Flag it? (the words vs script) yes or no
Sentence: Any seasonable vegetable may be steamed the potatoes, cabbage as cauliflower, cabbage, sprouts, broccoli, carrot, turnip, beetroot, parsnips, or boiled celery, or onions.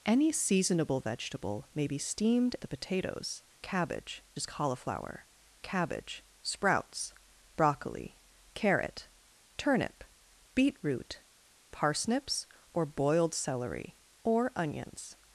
no